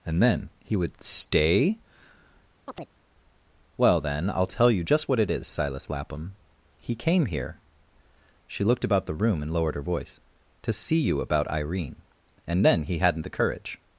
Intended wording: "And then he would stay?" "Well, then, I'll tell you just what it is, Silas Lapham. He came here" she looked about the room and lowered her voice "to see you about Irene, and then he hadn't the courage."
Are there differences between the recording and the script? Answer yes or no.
no